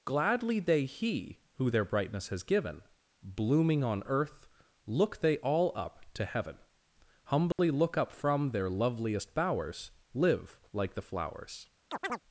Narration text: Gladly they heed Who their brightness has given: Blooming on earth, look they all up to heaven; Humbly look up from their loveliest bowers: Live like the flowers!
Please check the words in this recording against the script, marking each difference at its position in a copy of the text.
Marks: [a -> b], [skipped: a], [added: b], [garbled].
Gladly they [heed -> he] Who their brightness has given: Blooming on earth, look they all up to heaven; Humbly look up from their loveliest bowers: Live like the flowers!